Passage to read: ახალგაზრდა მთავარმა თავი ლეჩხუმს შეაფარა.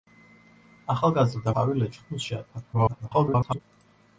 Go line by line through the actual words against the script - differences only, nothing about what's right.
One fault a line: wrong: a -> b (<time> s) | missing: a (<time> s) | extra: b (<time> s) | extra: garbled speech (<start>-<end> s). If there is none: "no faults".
missing: მთავარმა (1.5 s)
extra: garbled speech (2.7-3.6 s)